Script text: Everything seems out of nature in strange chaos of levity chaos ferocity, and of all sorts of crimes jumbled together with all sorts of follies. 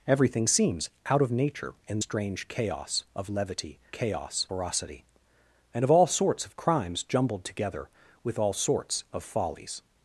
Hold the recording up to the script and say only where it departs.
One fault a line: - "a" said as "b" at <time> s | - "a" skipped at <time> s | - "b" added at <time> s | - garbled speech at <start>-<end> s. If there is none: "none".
none